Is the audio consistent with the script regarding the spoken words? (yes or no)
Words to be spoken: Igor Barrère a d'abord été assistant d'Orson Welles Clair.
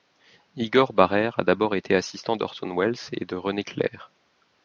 no